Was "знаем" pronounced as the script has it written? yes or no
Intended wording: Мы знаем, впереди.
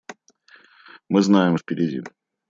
yes